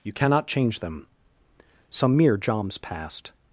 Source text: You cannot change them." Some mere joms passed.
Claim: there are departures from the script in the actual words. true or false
false